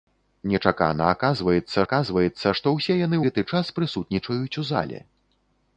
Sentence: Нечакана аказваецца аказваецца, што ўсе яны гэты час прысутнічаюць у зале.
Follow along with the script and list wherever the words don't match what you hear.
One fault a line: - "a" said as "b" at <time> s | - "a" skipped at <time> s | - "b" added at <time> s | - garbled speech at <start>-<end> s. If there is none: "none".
none